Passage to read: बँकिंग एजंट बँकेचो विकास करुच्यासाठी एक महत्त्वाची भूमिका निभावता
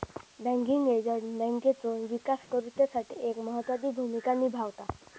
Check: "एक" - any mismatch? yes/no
no